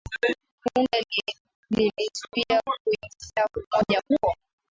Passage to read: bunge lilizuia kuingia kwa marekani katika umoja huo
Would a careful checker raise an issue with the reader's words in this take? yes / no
yes